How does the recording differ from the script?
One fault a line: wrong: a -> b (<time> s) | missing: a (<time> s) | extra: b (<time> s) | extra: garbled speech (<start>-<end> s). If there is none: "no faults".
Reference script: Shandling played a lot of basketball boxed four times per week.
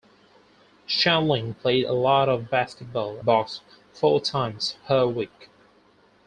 no faults